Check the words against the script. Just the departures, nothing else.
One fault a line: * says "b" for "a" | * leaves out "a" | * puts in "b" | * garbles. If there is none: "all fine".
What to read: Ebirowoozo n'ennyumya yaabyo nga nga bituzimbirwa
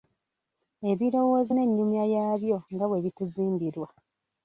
* says "bwe" for "nga"